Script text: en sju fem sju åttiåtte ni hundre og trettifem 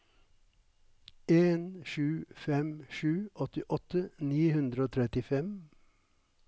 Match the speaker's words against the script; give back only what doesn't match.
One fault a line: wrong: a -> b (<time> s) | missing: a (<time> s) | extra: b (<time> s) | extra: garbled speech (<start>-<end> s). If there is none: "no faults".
no faults